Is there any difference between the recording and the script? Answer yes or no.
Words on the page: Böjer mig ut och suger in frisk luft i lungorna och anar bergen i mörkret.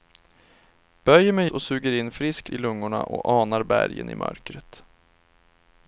yes